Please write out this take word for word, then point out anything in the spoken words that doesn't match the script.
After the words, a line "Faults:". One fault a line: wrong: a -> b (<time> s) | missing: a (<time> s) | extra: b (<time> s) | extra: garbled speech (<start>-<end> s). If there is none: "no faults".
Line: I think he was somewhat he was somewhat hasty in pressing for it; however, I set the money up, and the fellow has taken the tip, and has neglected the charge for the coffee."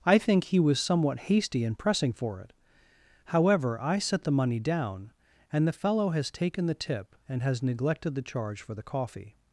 I think he was somewhat hasty in pressing for it; however, I set the money down, and the fellow has taken the tip, and has neglected the charge for the coffee."
Faults:
missing: he was somewhat (1.2 s)
wrong: up -> down (4.6 s)